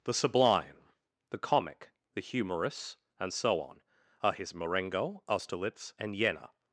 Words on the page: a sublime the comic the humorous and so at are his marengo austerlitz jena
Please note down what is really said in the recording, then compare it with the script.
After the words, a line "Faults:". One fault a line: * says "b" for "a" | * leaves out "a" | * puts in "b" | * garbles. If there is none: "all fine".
the sublime the comic the humorous and so on are his marengo austerlitz and jena
Faults:
* says "the" for "a"
* says "on" for "at"
* puts in "and"